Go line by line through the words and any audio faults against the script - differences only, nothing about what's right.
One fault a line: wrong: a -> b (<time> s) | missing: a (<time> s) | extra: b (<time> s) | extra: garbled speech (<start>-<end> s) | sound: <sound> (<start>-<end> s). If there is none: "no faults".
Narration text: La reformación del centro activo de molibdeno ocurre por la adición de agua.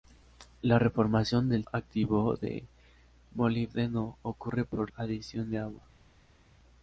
missing: centro (1.6 s)
missing: la (4.9 s)